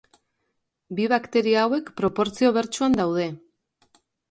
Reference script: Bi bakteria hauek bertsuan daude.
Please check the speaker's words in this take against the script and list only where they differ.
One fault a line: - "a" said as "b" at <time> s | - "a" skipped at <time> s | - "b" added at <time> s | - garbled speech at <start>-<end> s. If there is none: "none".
- "proportzio" added at 2.0 s